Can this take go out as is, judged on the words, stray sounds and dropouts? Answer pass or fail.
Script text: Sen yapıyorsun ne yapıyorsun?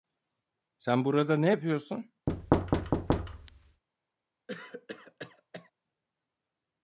fail